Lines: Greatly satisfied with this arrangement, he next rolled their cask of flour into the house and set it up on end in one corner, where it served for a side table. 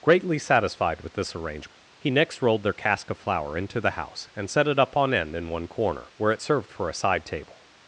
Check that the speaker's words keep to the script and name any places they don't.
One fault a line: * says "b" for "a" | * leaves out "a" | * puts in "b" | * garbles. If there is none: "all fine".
all fine